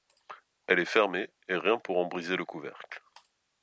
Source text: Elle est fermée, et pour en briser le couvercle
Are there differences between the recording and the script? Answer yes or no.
yes